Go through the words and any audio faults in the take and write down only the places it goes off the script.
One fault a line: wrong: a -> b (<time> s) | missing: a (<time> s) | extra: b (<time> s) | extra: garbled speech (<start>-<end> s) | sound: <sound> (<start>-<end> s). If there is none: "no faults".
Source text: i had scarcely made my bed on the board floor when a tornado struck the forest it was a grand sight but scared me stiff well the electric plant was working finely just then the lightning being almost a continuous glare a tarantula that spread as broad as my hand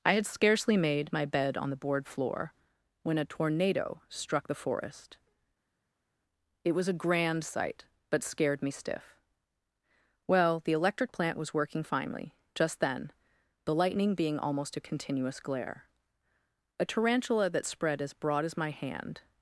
no faults